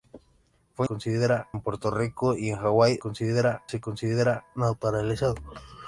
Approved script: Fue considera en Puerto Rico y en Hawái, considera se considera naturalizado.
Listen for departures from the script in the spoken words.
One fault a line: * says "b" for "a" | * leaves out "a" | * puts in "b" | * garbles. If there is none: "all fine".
all fine